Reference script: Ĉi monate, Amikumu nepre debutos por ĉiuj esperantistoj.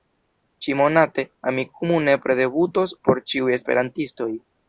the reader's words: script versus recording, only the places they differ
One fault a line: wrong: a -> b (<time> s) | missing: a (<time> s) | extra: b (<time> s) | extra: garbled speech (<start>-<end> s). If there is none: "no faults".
no faults